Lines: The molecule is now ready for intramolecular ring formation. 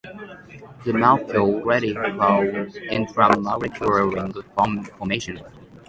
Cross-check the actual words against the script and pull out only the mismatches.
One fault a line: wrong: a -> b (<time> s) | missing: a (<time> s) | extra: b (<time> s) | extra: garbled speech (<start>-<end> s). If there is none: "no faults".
missing: is now (1.6 s)